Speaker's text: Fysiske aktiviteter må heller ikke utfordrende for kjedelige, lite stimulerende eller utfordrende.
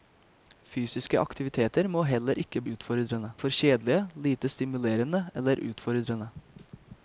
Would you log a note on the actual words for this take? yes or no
no